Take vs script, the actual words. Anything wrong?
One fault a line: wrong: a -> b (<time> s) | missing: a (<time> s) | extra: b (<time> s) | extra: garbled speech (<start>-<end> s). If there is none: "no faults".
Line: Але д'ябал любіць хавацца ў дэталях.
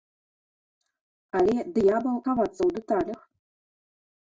missing: любіць (2.2 s)